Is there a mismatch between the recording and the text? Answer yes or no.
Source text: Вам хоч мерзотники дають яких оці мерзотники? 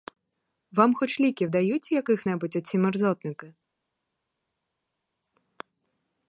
yes